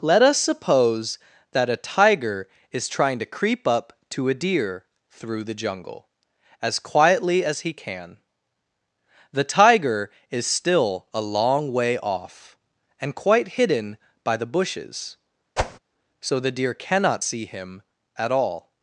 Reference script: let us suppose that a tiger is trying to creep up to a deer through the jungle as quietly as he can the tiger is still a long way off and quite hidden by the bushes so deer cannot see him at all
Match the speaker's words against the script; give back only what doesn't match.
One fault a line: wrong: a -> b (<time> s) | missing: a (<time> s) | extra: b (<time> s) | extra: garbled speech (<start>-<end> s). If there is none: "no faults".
extra: the (16.4 s)